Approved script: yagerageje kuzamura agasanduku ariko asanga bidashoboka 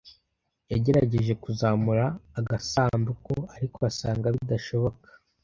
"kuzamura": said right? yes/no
yes